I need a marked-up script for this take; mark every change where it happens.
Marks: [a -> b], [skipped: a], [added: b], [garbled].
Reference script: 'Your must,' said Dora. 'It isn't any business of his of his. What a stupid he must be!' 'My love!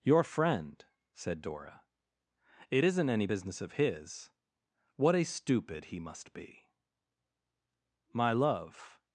'Your [must,' -> friend] said Dora. 'It isn't any business of his [skipped: of his.] What a stupid he must be!' 'My love!